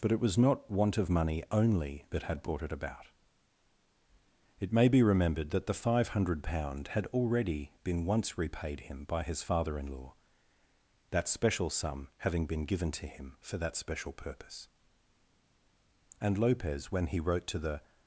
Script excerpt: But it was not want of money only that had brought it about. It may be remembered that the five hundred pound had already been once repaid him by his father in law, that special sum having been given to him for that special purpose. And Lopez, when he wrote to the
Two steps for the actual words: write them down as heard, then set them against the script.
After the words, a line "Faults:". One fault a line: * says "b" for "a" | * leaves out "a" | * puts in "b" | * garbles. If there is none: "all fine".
But it was not want of money only that had brought it about. It may be remembered that the five hundred pound had already been once repaid him by his father in law, that special sum having been given to him for that special purpose. And Lopez, when he wrote to the
Faults:
all fine